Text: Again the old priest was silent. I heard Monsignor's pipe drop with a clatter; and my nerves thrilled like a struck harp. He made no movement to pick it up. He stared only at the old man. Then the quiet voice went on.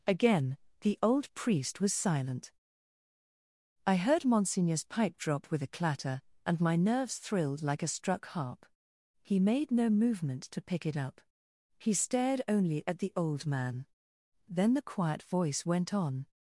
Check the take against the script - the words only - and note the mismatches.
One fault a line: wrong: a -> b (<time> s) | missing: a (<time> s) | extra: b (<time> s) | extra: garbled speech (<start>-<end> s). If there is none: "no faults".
no faults